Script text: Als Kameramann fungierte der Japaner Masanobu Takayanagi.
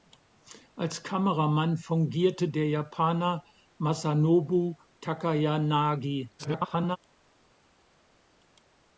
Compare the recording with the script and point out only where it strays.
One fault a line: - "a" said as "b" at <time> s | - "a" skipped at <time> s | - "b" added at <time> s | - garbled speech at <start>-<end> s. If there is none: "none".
- garbled speech at 6.4-7.0 s